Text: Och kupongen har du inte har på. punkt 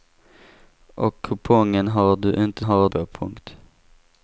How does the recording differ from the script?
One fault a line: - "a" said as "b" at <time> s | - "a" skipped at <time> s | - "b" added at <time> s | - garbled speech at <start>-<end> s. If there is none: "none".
none